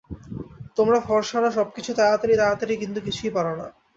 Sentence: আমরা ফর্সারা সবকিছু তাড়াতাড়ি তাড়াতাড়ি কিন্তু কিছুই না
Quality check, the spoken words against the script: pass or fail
fail